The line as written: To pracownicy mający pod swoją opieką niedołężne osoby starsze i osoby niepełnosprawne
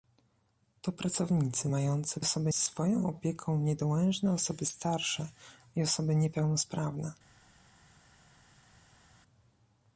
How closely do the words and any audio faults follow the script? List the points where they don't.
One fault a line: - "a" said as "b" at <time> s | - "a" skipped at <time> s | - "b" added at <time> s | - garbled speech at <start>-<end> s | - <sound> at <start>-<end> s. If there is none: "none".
- "pod" said as "osoby" at 2.2 s